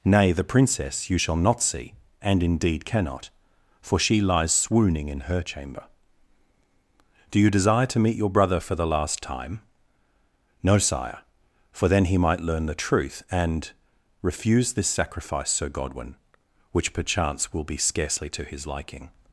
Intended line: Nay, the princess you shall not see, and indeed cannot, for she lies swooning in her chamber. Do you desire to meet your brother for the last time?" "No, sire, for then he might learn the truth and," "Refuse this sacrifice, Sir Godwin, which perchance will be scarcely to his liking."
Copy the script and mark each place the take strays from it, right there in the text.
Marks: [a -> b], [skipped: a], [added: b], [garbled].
Nay, the princess you shall not see, and indeed cannot, for she lies swooning in her chamber. Do you desire to meet your brother for the last time?" "No, sire, for then he might learn the truth and," "Refuse this sacrifice, Sir Godwin, which perchance will be scarcely to his liking."